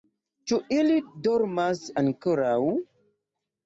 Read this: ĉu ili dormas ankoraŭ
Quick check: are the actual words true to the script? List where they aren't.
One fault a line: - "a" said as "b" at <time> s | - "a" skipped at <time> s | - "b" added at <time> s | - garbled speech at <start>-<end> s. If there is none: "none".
none